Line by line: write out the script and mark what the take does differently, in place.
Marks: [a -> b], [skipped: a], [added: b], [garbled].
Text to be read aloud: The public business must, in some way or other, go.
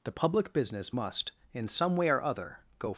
The public business must, in some way or other, go.